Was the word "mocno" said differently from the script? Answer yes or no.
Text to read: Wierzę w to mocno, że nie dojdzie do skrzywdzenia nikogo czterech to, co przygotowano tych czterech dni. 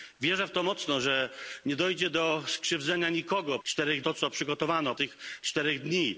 no